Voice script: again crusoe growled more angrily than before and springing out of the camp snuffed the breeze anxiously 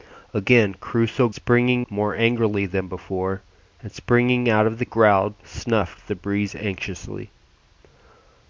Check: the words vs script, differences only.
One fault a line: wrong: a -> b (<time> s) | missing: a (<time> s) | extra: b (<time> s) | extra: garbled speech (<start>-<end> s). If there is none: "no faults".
wrong: growled -> springing (1.3 s)
wrong: camp -> growled (4.8 s)